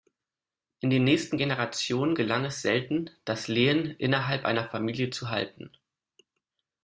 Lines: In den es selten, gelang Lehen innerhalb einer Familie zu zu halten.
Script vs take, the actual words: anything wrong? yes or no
yes